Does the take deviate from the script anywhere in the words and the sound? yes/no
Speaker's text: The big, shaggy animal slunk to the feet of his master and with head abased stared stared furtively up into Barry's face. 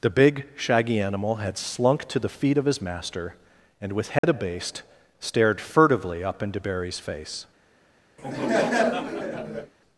yes